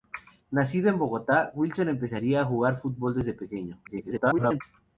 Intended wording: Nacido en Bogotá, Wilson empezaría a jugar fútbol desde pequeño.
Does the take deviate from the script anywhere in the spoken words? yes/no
yes